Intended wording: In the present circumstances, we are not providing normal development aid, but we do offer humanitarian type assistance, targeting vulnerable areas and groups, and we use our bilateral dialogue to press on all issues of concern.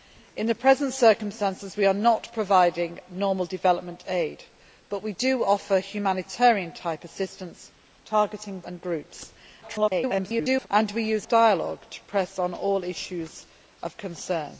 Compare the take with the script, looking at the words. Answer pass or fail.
fail